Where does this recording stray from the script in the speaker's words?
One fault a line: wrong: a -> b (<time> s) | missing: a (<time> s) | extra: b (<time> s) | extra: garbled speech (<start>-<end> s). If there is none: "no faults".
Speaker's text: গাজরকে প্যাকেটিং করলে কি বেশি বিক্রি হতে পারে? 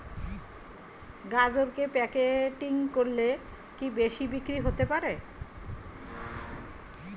no faults